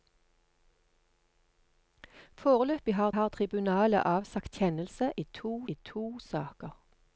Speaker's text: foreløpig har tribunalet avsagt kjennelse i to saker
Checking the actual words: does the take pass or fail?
fail